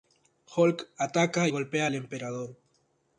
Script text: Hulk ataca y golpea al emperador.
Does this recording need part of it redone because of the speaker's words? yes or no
yes